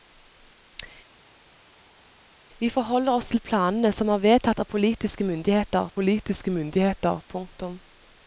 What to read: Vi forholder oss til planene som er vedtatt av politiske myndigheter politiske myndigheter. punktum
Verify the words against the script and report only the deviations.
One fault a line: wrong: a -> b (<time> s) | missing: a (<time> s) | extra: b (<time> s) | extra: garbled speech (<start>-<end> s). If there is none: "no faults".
no faults